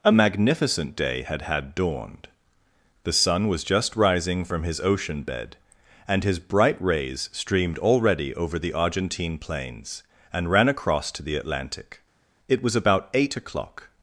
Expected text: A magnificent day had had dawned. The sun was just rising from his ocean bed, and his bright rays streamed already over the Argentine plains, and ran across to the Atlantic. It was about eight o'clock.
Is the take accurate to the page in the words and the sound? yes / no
yes